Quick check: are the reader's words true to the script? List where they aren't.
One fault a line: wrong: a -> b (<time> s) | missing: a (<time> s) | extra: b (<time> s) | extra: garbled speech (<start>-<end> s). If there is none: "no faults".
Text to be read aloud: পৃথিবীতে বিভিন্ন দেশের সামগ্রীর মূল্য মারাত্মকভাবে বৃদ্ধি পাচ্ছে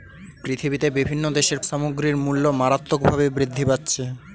no faults